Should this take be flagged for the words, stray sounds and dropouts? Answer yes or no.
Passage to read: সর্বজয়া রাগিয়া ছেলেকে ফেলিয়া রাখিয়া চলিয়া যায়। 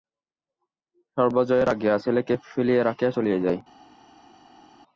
no